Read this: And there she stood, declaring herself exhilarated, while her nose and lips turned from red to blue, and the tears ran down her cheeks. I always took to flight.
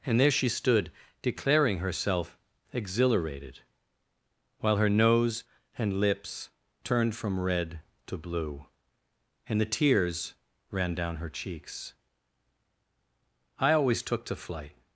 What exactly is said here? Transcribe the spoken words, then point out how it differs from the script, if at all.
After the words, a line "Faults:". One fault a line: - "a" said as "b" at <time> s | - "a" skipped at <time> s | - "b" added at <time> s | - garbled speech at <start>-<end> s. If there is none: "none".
And there she stood, declaring herself exhilarated, while her nose and lips turned from red to blue, and the tears ran down her cheeks. I always took to flight.
Faults:
none